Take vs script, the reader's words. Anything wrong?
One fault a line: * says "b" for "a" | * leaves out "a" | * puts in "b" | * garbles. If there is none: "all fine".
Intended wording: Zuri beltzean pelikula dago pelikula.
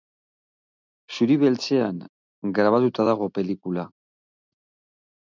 * says "grabatuta" for "pelikula"